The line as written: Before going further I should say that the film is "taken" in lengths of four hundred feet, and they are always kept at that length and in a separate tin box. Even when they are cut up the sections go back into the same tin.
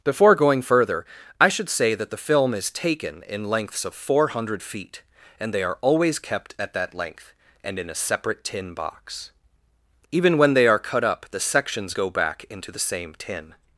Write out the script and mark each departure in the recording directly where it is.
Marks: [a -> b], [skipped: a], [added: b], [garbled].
Before going further I should say that the film is "taken" in lengths of four hundred feet, and they are always kept at that length and in a separate tin box. Even when they are cut up the sections go back into the same tin.